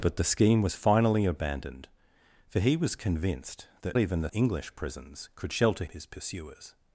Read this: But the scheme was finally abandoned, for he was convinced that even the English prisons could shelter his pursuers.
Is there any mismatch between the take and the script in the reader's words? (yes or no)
no